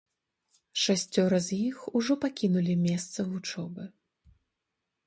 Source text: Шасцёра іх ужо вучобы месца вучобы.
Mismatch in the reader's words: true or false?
true